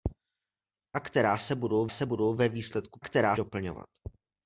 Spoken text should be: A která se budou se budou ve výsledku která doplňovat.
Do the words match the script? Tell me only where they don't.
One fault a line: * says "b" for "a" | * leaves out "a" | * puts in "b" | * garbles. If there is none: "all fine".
all fine